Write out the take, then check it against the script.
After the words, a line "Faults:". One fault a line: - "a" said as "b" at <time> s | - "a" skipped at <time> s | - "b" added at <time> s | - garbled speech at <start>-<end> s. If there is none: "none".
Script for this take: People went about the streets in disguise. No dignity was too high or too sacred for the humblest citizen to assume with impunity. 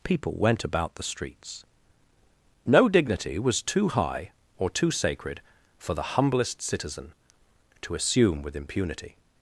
People went about the streets. No dignity was too high or too sacred for the humblest citizen to assume with impunity.
Faults:
- "in disguise" skipped at 1.6 s